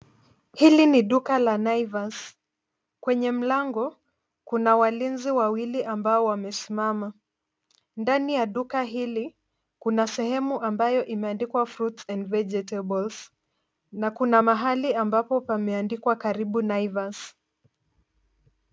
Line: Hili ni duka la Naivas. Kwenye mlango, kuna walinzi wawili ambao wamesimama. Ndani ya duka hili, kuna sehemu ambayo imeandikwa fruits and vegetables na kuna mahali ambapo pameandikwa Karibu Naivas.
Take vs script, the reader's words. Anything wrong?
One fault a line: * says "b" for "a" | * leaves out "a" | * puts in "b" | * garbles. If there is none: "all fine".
all fine